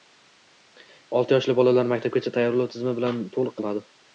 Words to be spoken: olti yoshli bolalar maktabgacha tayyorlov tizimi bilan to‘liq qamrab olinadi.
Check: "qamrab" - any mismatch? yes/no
yes